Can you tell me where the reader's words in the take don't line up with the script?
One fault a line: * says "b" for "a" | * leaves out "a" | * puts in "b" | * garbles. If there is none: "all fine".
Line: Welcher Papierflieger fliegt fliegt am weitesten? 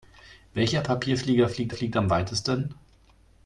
all fine